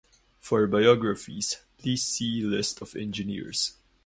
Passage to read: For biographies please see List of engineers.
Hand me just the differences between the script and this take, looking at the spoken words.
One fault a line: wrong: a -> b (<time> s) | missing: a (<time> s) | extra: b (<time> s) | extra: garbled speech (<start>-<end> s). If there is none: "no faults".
no faults